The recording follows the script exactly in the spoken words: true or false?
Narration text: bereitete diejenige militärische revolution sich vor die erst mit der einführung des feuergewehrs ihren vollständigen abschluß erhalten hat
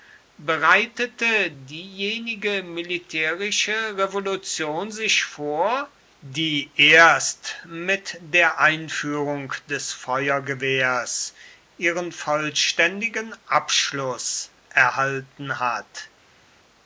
true